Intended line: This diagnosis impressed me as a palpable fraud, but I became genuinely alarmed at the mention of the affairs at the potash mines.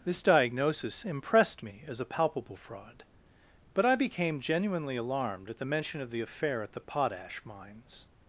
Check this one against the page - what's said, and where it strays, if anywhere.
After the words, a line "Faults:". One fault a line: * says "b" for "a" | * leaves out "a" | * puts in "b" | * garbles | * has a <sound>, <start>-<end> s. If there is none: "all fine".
This diagnosis impressed me as a palpable fraud, but I became genuinely alarmed at the mention of the affair at the potash mines.
Faults:
* says "affair" for "affairs"